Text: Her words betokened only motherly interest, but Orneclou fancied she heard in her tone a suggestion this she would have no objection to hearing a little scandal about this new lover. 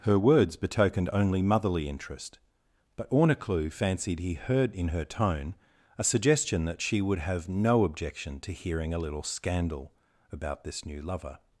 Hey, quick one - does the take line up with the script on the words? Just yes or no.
no